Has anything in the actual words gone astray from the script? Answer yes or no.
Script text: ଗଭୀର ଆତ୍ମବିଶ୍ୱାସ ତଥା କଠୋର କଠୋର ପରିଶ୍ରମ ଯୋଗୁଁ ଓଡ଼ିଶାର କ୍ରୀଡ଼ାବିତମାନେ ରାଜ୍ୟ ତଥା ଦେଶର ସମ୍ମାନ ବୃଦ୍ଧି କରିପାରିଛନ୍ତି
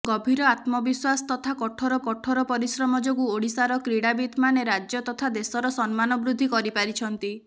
no